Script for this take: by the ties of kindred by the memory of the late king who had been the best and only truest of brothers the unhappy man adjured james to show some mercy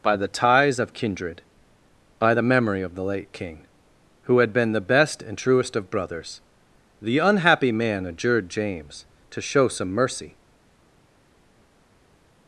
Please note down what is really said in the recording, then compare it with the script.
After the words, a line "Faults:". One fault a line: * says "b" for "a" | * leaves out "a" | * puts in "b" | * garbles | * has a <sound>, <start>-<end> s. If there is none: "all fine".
by the ties of kindred by the memory of the late king who had been the best and truest of brothers the unhappy man adjured james to show some mercy
Faults:
* leaves out "only"